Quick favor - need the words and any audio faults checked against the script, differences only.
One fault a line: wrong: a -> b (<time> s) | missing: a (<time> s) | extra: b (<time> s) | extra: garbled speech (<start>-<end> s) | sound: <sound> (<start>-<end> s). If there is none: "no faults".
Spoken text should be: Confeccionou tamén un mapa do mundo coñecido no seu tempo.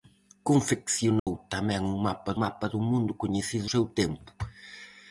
sound: dropout (1.2-1.3 s)
extra: mapa (2.4 s)
missing: no (3.7 s)